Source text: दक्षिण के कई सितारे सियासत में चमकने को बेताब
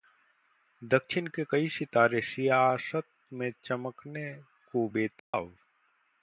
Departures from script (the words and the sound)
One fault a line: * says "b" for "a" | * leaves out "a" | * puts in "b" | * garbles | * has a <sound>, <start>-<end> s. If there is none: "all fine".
* has a dropout, 5.2-5.3 s